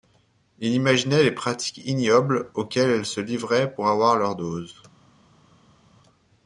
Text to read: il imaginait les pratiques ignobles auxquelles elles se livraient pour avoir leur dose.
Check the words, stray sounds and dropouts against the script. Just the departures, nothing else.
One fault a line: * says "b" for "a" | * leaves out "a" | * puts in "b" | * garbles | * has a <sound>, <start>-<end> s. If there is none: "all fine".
all fine